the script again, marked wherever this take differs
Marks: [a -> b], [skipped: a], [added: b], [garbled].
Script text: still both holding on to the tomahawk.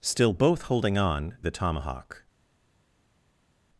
still both holding on [skipped: to] the tomahawk.